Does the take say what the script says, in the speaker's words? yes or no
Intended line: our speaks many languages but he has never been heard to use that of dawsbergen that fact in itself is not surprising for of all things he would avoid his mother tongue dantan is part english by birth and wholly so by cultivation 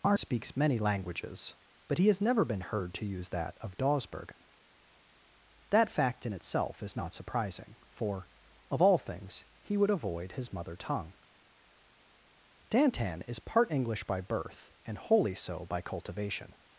yes